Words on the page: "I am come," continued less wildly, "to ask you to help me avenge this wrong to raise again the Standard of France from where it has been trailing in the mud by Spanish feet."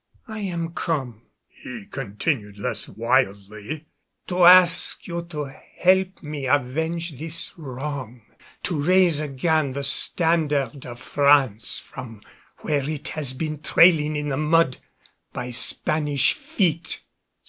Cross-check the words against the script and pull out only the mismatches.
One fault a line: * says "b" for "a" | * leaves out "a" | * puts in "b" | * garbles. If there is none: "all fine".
* puts in "he"